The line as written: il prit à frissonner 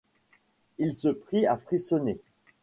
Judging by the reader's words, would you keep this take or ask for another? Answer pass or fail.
fail